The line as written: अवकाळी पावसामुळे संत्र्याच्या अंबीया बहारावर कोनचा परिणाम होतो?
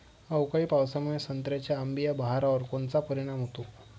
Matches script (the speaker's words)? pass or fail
pass